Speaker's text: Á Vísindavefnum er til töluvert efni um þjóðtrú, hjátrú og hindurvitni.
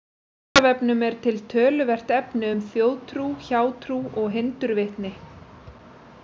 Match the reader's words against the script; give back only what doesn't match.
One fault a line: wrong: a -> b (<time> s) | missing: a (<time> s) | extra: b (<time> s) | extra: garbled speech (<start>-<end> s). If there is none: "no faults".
no faults